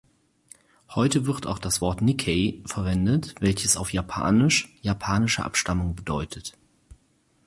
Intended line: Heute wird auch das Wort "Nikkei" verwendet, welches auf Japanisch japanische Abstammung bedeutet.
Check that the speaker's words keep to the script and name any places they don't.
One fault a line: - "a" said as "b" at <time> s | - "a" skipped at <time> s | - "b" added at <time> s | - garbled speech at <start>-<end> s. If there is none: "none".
none